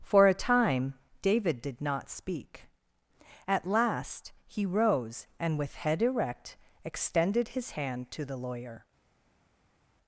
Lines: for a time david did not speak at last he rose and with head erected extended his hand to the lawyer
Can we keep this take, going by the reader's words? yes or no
no